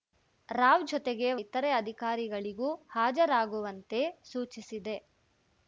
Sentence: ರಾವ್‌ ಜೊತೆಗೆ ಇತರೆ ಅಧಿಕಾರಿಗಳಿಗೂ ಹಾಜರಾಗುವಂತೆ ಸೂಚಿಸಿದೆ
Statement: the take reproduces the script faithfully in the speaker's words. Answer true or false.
true